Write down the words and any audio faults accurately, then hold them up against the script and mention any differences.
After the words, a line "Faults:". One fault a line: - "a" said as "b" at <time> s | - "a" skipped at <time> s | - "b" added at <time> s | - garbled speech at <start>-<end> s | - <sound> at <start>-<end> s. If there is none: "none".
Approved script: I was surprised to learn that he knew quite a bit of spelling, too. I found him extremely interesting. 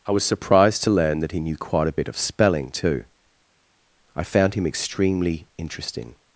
I was surprised to learn that he knew quite a bit of spelling, too. I found him extremely interesting.
Faults:
none